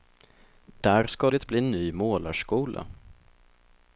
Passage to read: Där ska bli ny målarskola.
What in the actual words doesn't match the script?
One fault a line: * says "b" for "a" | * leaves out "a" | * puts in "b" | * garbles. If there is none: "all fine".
* puts in "det"